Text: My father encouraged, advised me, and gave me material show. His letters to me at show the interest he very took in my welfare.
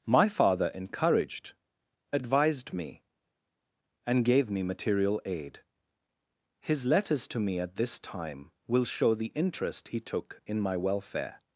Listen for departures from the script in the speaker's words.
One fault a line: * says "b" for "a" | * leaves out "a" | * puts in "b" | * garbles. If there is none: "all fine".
* says "aid" for "show"
* puts in "this time will"
* leaves out "very"